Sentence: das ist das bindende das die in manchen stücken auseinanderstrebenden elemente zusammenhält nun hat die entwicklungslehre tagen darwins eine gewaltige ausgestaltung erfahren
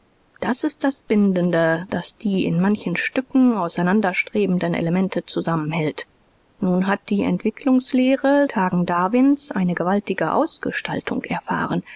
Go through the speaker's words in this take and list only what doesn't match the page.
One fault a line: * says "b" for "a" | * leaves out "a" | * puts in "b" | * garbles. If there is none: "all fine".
all fine